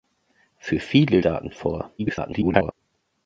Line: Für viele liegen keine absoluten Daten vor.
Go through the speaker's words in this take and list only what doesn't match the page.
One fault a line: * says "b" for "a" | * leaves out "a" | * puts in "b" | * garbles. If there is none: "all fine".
* leaves out "liegen keine absoluten"
* garbles